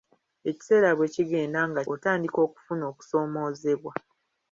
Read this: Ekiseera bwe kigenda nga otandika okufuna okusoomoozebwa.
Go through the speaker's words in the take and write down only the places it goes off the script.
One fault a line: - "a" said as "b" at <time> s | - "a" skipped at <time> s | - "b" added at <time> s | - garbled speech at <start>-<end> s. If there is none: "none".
none